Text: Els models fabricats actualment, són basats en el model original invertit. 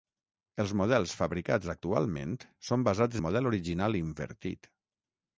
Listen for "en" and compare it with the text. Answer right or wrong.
wrong